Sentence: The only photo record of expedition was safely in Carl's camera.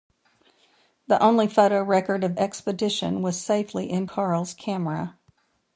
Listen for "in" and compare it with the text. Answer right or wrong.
right